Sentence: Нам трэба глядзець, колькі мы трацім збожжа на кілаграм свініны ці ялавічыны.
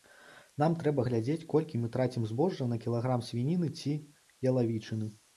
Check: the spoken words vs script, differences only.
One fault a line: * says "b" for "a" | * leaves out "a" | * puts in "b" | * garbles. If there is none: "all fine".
all fine